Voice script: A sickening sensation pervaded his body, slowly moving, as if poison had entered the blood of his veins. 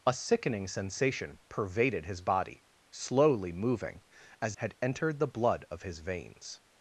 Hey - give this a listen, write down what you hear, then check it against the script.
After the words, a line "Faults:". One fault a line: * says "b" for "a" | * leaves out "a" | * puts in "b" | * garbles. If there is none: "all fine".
A sickening sensation pervaded his body, slowly moving, as had entered the blood of his veins.
Faults:
* leaves out "if poison"